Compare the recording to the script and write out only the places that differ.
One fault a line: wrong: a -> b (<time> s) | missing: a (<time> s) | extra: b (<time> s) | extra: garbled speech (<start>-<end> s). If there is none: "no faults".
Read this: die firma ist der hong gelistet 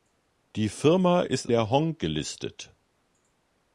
no faults